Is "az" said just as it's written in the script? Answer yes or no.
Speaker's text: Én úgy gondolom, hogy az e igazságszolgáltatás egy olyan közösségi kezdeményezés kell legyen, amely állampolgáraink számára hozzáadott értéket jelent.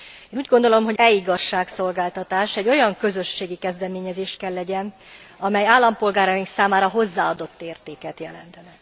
no